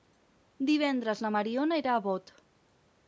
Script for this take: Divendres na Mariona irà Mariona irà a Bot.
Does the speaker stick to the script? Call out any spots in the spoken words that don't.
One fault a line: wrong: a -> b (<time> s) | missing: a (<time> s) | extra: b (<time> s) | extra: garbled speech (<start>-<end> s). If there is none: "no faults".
missing: Mariona irà (2.0 s)